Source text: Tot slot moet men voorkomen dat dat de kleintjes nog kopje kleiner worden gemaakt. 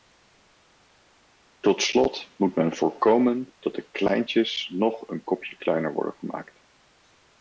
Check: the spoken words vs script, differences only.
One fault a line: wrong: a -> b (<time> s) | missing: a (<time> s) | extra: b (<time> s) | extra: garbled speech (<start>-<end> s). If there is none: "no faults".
missing: dat (3.8 s)
extra: een (5.1 s)